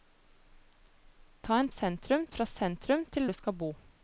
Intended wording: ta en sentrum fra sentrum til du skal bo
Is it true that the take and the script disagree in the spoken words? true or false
false